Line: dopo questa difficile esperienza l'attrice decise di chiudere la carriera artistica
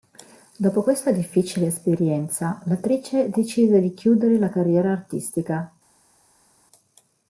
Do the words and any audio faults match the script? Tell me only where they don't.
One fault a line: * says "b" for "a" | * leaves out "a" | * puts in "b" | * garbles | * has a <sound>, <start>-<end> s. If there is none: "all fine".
all fine